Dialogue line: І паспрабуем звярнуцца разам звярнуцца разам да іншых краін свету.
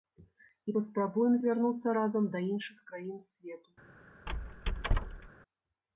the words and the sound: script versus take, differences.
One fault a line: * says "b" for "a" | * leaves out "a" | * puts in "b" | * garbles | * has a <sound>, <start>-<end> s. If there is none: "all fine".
* leaves out "звярнуцца разам"
* has a squeak, 4.3-5.3 s